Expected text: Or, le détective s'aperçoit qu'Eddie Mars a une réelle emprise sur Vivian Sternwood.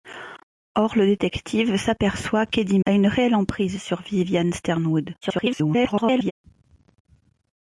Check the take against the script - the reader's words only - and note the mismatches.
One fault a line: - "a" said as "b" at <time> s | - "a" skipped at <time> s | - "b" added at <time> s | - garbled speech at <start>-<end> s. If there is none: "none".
- "Mars" skipped at 2.8 s
- garbled speech at 5.2-6.3 s